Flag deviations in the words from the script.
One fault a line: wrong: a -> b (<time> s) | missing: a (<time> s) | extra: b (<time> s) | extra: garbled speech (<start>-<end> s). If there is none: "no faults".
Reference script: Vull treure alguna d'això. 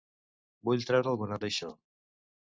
no faults